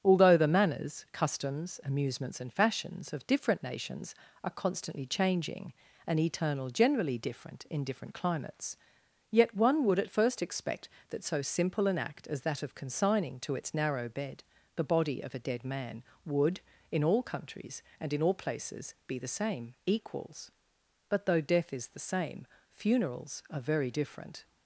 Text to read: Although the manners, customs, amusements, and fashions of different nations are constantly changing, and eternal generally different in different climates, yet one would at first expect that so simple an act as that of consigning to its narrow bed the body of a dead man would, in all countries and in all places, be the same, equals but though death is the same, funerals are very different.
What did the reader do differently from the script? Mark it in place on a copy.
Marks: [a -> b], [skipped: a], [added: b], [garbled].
Although the manners, customs, amusements, and fashions of different nations are constantly changing, and eternal generally different in different climates, yet one would at first expect that so simple an act as that of consigning to its narrow bed the body of a dead man would, in all countries and in all places, be the same, equals but though death is the same, funerals are very different.